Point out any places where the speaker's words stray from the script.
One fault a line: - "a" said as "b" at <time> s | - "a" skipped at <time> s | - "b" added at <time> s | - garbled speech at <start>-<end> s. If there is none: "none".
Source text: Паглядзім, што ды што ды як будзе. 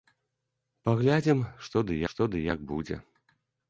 none